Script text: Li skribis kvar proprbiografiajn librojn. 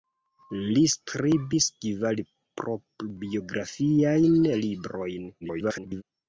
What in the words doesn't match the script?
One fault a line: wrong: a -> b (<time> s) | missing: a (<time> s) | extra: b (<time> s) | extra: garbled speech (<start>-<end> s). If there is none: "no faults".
extra: garbled speech (5.4-6.0 s)